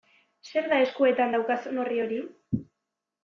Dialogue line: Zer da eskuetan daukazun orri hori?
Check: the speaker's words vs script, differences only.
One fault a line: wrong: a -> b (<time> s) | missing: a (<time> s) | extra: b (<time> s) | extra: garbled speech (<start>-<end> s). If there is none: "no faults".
no faults